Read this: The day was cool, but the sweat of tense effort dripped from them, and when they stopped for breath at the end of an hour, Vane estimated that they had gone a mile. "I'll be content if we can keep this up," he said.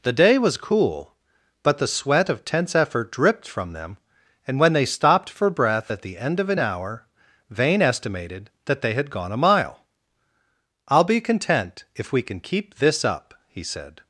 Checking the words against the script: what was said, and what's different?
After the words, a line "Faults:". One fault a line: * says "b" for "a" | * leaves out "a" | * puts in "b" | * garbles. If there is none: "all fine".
The day was cool, but the sweat of tense effort dripped from them, and when they stopped for breath at the end of an hour, Vane estimated that they had gone a mile. "I'll be content if we can keep this up," he said.
Faults:
all fine